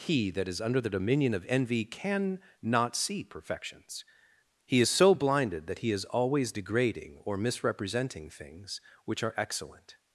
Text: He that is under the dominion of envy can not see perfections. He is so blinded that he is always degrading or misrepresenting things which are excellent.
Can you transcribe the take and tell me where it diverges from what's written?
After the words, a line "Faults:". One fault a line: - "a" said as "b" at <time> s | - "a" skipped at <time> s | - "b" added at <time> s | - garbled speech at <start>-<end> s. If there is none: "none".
He that is under the dominion of envy can not see perfections. He is so blinded that he is always degrading or misrepresenting things which are excellent.
Faults:
none